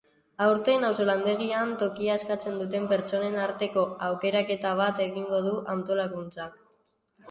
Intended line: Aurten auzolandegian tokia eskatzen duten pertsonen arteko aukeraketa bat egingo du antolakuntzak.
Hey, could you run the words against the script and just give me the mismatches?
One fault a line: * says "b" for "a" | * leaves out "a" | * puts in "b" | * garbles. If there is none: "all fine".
all fine